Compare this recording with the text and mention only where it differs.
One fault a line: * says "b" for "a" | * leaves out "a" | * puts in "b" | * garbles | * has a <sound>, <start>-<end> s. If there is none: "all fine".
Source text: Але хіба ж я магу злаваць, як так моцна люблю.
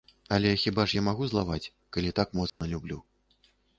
* says "калі" for "як"
* has a dropout, 2.5-2.6 s